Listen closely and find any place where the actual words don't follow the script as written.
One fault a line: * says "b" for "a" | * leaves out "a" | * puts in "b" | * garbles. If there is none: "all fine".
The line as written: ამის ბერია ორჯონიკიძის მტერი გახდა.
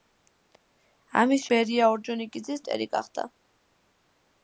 all fine